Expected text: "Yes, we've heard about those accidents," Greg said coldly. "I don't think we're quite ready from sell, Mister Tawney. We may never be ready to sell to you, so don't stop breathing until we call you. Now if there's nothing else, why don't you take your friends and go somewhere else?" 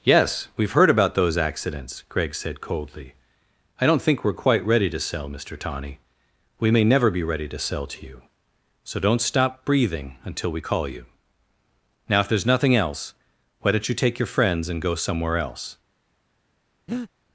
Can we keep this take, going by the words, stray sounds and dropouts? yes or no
no